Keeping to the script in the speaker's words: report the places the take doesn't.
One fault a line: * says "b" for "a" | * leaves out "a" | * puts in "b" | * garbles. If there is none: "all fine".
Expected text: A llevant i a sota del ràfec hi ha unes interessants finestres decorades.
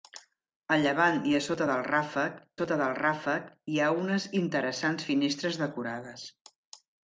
* puts in "sota del ràfec"